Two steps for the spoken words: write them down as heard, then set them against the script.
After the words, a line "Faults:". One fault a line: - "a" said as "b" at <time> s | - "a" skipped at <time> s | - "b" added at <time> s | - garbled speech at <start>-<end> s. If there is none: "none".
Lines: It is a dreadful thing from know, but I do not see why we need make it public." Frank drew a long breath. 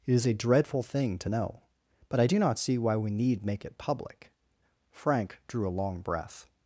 It is a dreadful thing to know, but I do not see why we need make it public." Frank drew a long breath.
Faults:
- "from" said as "to" at 1.2 s